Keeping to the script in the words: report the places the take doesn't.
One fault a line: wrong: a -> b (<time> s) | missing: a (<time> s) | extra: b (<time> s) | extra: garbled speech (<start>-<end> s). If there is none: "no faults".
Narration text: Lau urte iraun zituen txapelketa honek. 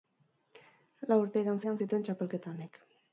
extra: iraun (1.6 s)